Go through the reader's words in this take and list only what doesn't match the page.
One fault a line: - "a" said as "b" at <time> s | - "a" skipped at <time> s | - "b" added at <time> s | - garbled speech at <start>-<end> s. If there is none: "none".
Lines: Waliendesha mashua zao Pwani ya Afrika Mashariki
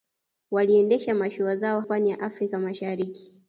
none